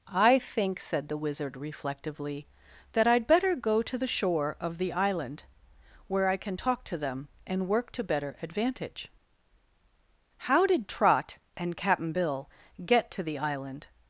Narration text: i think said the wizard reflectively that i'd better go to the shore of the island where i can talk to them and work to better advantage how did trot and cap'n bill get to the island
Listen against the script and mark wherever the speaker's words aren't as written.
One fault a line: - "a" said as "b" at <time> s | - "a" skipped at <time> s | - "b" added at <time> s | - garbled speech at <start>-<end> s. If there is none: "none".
none